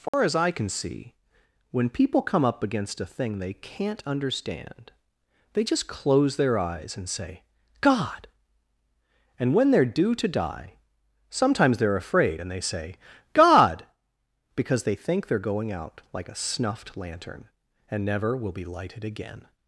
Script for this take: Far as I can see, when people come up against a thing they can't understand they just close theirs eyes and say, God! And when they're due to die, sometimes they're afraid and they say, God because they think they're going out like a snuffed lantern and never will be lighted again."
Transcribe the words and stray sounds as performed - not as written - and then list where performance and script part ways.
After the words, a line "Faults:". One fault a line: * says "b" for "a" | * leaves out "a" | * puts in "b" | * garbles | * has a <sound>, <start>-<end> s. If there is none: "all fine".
Far as I can see, when people come up against a thing they can't understand they just close their eyes and say, God! And when they're due to die, sometimes they're afraid and they say, God because they think they're going out like a snuffed lantern and never will be lighted again."
Faults:
* has a dropout, 0.1-0.1 s
* says "their" for "theirs"